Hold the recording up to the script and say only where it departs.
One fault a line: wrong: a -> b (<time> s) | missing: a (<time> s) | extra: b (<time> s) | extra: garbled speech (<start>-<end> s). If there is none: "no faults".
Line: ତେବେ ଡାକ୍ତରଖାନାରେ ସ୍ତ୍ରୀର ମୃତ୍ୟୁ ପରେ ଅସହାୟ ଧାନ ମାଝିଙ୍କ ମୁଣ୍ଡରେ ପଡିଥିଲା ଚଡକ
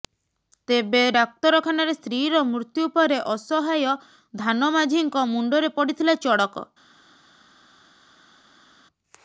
no faults